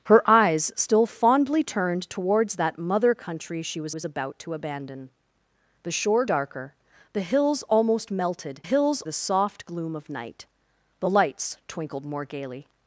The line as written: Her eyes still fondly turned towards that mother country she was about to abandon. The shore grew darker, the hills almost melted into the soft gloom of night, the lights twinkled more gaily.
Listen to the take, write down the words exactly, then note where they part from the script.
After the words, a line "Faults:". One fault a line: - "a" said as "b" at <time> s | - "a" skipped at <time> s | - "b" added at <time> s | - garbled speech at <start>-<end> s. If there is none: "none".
Her eyes still fondly turned towards that mother country she was was about to abandon. The shore darker, the hills almost melted hills the soft gloom of night, the lights twinkled more gaily.
Faults:
- "was" added at 3.9 s
- "grew" skipped at 6.2 s
- "into" said as "hills" at 8.6 s